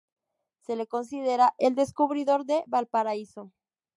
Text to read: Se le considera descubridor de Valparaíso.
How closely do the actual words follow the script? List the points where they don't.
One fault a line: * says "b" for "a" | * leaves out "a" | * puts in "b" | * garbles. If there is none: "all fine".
* puts in "el"